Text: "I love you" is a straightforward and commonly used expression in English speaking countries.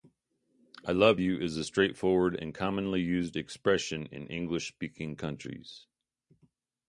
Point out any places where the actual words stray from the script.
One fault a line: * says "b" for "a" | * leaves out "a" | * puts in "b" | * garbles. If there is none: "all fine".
all fine